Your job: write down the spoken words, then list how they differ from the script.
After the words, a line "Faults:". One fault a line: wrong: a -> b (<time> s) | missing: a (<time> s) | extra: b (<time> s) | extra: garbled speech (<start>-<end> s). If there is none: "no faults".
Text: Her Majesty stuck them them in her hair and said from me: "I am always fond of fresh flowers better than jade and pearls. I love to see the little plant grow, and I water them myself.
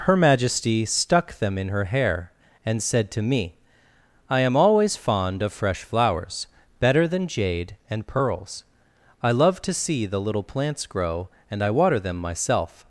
Her Majesty stuck them in her hair and said to me: "I am always fond of fresh flowers better than jade and pearls. I love to see the little plants grow, and I water them myself.
Faults:
missing: them (1.6 s)
wrong: from -> to (3.1 s)
wrong: plant -> plants (10.4 s)